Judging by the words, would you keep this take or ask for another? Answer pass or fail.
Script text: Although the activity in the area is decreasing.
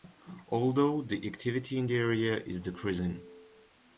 pass